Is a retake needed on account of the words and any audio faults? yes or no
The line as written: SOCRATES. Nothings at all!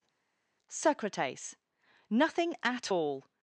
yes